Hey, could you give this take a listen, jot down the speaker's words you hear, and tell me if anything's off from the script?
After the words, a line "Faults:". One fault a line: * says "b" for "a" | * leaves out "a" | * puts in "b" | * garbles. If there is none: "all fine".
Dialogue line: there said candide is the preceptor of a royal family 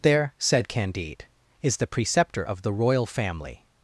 there said candide is the preceptor of the royal family
Faults:
* says "the" for "a"